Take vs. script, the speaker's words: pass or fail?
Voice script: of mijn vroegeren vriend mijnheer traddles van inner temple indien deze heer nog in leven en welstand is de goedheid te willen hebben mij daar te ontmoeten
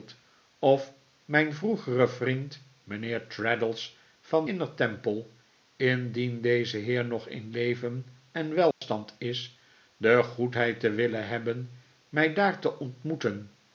pass